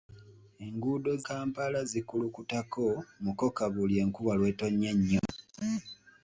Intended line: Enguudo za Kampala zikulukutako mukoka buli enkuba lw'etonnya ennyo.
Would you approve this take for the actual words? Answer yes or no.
no